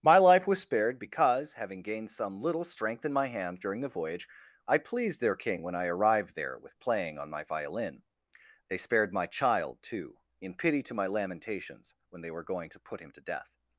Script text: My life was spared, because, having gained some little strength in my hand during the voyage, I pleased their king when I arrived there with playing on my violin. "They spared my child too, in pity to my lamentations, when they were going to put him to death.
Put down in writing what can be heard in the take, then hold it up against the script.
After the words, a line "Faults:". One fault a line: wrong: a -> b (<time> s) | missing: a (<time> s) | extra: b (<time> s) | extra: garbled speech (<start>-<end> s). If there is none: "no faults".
My life was spared, because, having gained some little strength in my hand during the voyage, I pleased their king when I arrived there with playing on my violin. "They spared my child too, in pity to my lamentations, when they were going to put him to death.
Faults:
no faults